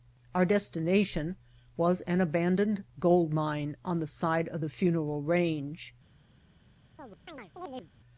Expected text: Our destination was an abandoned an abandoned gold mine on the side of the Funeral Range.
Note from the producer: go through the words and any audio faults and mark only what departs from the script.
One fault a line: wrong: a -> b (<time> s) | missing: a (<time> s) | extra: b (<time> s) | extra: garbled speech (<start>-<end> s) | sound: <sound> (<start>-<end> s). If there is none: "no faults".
missing: an abandoned (2.9 s)
sound: chirp (7.0-7.9 s)